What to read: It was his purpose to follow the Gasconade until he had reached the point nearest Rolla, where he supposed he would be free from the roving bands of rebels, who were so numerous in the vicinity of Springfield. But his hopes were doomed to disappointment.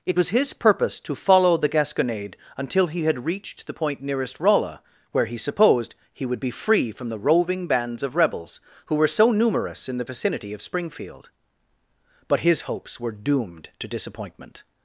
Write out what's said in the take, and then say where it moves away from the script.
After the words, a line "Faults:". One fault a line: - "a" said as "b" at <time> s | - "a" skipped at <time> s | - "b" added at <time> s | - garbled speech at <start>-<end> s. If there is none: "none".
It was his purpose to follow the Gasconade until he had reached the point nearest Rolla, where he supposed he would be free from the roving bands of rebels, who were so numerous in the vicinity of Springfield. But his hopes were doomed to disappointment.
Faults:
none